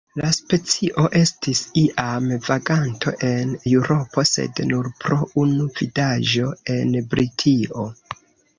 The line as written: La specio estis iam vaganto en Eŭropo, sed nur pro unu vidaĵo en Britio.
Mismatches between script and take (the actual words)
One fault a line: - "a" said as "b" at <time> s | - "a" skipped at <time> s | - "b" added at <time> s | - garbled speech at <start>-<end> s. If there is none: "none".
none